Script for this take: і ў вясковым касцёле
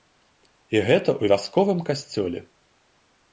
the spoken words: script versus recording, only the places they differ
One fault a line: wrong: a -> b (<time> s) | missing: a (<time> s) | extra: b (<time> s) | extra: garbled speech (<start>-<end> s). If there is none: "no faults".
extra: гэта (0.9 s)